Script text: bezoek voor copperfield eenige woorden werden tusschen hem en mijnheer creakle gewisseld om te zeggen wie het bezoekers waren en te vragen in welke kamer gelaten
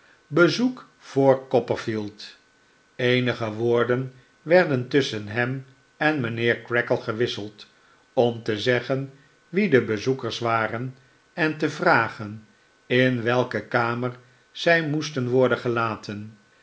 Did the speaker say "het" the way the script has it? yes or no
no